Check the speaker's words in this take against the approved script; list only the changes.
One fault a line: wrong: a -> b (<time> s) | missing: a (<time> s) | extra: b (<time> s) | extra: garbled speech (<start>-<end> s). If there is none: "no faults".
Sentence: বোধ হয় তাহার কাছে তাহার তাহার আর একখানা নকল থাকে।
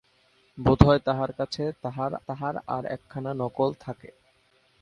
no faults